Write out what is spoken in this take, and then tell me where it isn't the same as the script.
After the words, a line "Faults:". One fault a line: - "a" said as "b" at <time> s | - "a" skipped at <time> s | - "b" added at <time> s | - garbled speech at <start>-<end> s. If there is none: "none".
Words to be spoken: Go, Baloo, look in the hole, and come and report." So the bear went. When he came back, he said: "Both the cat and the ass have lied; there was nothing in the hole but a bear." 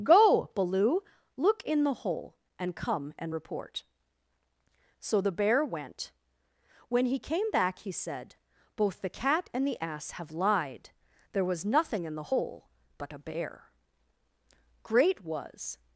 Go, Baloo, look in the hole, and come and report." So the bear went. When he came back, he said: "Both the cat and the ass have lied; there was nothing in the hole but a bear." Great was
Faults:
- "Great was" added at 14.8 s